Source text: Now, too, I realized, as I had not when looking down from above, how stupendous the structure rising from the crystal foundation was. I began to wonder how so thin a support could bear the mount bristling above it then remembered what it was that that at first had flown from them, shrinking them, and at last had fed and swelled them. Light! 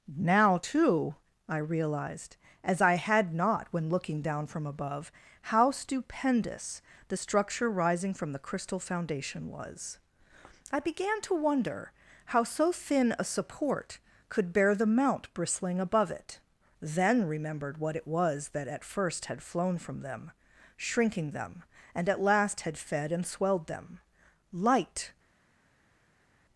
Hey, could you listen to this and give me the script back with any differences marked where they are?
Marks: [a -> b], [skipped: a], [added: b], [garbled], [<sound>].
Now, too, I realized, as I had not when looking down from above, how stupendous the structure rising from the crystal foundation was. I began to wonder how so thin a support could bear the mount bristling above it then remembered what it was that [skipped: that] at first had flown from them, shrinking them, and at last had fed and swelled them. Light!